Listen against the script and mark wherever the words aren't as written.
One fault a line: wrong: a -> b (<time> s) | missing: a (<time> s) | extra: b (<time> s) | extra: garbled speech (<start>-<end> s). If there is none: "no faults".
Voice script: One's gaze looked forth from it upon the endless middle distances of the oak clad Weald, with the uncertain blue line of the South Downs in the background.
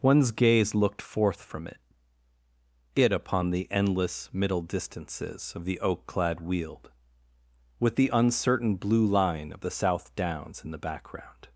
extra: it (2.9 s)